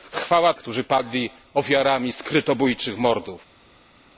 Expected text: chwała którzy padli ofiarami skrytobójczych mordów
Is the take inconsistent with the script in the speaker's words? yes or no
no